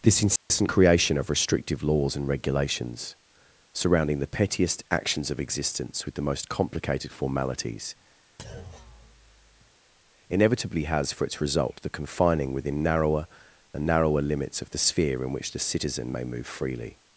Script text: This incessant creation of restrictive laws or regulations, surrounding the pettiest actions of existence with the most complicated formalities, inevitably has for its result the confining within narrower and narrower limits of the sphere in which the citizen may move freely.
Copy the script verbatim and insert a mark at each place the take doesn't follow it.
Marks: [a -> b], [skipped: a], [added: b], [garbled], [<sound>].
This incessant [dropout] creation of restrictive laws [or -> and] regulations, surrounding the pettiest actions of existence with the most complicated formalities, [thud] inevitably has for its result the confining within narrower and narrower limits of the sphere in which the citizen may move freely.